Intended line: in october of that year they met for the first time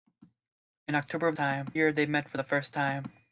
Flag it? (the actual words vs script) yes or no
yes